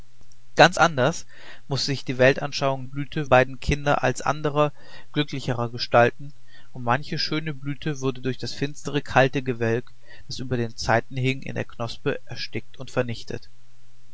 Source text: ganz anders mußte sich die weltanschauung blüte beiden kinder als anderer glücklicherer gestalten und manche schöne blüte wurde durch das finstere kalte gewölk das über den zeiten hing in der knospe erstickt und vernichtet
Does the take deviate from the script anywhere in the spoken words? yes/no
no